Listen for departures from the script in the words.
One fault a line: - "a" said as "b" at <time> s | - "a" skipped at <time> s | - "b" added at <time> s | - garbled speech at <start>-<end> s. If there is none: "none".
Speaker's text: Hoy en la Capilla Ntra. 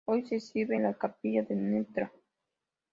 - "se exhibe" added at 0.2 s
- "de" added at 1.4 s